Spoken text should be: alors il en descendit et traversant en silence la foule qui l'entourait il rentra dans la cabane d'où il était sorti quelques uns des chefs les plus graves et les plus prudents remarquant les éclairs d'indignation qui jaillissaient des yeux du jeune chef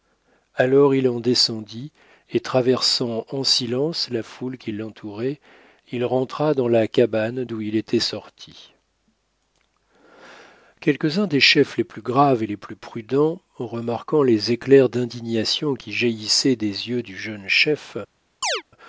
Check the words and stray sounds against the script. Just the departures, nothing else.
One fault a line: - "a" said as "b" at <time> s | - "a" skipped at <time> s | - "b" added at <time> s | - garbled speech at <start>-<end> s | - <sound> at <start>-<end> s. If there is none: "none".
- chirp at 18.4-18.6 s